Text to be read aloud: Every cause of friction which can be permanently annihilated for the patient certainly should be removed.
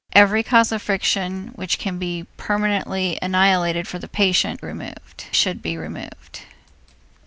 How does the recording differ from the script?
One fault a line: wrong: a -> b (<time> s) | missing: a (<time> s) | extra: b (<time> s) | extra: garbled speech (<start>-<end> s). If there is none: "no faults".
wrong: certainly -> removed (4.6 s)